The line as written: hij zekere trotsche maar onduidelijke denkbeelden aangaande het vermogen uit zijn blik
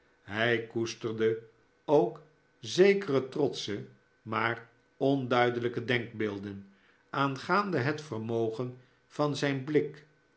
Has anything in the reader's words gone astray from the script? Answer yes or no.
yes